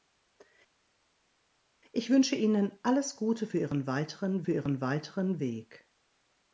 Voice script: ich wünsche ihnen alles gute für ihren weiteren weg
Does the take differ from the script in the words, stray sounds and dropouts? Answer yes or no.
yes